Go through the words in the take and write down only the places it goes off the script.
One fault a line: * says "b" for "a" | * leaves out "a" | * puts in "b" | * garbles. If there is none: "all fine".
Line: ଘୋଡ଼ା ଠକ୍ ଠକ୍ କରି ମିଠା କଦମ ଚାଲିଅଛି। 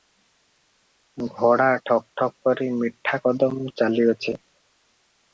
all fine